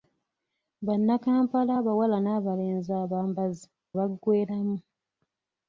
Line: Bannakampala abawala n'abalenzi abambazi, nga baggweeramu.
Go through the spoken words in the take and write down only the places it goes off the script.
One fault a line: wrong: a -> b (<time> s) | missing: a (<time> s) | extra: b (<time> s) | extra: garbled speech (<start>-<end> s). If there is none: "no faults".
missing: nga (3.7 s)